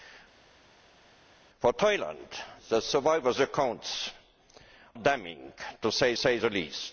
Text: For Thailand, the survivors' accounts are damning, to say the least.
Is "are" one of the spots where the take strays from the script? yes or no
yes